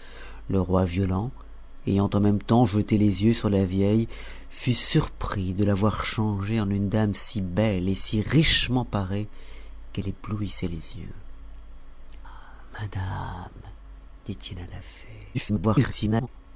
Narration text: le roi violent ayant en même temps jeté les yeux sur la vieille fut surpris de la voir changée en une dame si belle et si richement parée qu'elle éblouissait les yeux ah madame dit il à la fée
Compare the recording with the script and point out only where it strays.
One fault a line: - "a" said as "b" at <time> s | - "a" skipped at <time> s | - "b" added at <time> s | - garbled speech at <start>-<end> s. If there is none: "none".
- garbled speech at 15.3-16.3 s